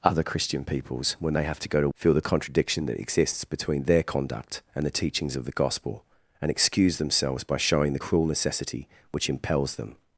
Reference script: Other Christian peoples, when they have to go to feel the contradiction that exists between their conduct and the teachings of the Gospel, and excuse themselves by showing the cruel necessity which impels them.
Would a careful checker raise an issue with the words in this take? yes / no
no